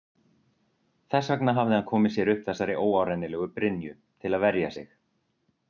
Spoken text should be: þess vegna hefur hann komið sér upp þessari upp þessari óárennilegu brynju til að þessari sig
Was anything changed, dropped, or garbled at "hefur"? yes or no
yes